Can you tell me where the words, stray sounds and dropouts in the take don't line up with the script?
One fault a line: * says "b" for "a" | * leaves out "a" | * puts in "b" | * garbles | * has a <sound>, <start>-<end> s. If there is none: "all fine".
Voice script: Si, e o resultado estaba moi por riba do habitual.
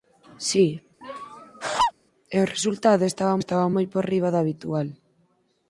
* has a laugh, 1.0-1.9 s
* puts in "estaba"